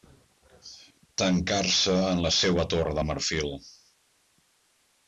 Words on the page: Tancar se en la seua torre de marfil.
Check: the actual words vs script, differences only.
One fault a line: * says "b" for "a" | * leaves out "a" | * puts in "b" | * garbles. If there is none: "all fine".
all fine